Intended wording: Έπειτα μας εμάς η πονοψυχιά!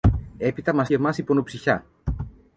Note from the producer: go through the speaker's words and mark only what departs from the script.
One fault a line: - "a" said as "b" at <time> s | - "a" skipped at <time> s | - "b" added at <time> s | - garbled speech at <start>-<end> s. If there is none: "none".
none